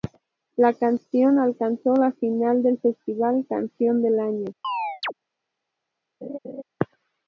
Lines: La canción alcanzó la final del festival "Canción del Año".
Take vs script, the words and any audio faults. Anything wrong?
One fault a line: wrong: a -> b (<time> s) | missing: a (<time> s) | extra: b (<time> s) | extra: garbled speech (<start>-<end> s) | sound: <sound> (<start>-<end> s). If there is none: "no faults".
sound: chirp (4.6-5.1 s)
sound: laugh (6.2-6.6 s)